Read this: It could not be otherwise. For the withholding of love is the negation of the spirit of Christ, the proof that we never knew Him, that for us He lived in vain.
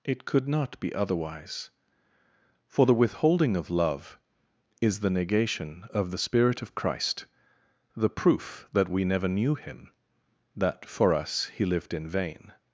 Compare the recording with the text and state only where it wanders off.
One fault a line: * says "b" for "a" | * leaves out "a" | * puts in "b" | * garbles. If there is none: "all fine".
all fine